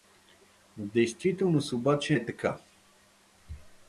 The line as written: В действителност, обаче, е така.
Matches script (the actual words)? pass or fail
pass